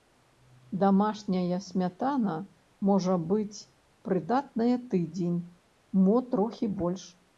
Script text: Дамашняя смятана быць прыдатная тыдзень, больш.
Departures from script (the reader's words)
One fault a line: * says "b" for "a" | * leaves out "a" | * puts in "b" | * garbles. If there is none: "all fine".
* puts in "можа"
* puts in "мо трохі"